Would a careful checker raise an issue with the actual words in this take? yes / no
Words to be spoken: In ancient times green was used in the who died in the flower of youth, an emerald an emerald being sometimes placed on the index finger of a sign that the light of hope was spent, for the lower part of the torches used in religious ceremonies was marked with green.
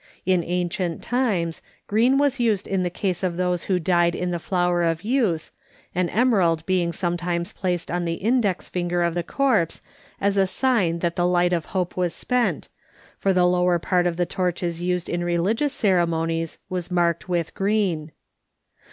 yes